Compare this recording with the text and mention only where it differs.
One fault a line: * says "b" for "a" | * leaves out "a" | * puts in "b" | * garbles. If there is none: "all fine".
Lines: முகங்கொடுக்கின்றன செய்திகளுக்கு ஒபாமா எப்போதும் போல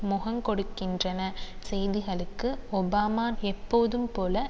all fine